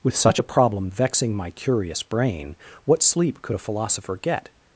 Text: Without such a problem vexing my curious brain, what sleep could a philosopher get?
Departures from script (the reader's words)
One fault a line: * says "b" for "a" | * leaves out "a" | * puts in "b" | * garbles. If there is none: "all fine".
* says "With" for "Without"